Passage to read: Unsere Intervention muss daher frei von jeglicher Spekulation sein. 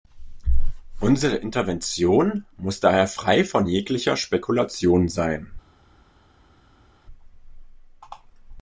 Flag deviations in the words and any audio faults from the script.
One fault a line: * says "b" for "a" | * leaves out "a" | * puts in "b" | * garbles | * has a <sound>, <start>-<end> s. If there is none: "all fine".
all fine